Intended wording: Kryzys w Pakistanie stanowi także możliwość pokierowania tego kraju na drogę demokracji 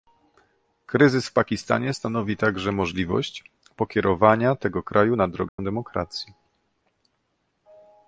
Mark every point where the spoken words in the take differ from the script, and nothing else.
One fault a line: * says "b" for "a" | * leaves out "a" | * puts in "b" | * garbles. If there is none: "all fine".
all fine